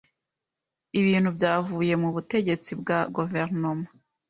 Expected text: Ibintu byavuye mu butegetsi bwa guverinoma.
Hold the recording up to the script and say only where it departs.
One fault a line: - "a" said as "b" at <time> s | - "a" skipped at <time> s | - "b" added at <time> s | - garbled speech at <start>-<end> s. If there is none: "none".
none